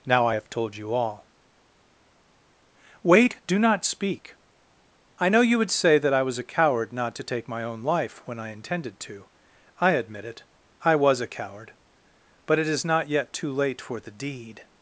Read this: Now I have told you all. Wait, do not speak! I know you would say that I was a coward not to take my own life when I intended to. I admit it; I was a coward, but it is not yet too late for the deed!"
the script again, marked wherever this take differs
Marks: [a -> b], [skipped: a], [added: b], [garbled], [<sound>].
Now I have told you all. Wait, do not speak! I know you would say that I was a coward not to take my own life when I intended to. I admit it; I was a coward, but it is not yet too late for the deed!"